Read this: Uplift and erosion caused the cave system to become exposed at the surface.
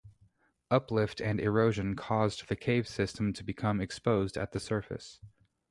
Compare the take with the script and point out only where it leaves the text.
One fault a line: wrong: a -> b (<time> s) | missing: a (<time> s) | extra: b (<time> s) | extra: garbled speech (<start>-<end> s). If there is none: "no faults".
no faults